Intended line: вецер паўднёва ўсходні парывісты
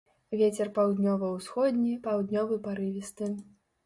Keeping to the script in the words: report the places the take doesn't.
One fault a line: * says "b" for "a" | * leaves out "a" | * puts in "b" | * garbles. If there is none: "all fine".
* puts in "паўднёвы"